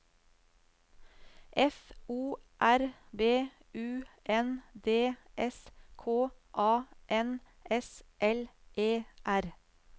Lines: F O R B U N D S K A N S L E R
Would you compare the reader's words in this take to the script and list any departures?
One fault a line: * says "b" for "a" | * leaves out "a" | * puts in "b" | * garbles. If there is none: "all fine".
all fine